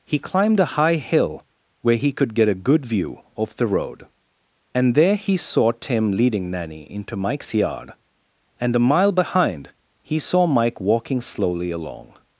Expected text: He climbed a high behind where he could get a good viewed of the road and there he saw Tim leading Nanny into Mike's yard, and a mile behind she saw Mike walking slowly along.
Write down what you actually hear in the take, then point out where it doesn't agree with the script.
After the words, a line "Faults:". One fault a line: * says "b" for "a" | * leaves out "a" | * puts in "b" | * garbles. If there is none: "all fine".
He climbed a high hill where he could get a good view of the road and there he saw Tim leading Nanny into Mike's yard, and a mile behind he saw Mike walking slowly along.
Faults:
* says "hill" for "behind"
* says "view" for "viewed"
* says "he" for "she"